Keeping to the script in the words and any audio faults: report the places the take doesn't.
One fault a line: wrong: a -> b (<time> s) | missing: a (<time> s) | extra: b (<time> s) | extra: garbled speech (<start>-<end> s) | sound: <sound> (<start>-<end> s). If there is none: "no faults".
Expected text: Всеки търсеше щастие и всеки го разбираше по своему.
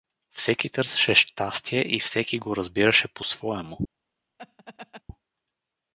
sound: laugh (4.4-5.0 s)